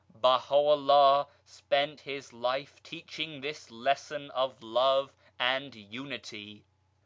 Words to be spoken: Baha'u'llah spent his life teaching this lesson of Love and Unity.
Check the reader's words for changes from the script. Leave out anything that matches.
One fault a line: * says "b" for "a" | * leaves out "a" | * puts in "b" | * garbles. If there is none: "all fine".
all fine